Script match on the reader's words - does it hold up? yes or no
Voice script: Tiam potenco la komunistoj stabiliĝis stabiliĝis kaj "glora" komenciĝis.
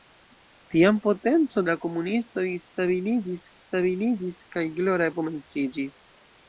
yes